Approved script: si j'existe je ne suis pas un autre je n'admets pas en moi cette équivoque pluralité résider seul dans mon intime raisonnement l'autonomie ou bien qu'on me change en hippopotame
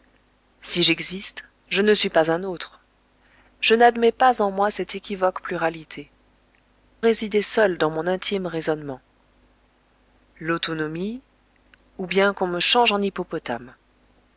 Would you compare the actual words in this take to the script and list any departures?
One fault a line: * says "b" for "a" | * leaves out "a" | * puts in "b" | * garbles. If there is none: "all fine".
all fine